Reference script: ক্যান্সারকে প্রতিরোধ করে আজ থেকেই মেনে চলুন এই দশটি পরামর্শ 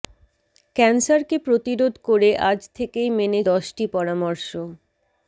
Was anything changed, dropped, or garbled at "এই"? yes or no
yes